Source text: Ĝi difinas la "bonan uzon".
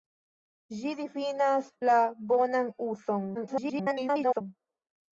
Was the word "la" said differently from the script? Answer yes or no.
no